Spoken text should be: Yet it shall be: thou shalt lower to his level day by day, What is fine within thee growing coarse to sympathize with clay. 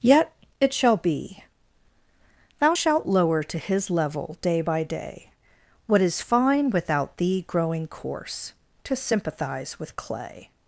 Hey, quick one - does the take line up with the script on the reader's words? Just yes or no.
no